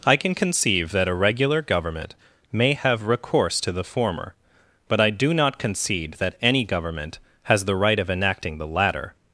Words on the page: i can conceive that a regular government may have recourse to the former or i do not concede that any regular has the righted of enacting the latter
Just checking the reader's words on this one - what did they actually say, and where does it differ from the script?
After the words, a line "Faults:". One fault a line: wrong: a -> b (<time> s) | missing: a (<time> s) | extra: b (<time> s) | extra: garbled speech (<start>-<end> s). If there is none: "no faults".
i can conceive that a regular government may have recourse to the former but i do not concede that any government has the right of enacting the latter
Faults:
wrong: or -> but (4.9 s)
wrong: regular -> government (6.6 s)
wrong: righted -> right (7.8 s)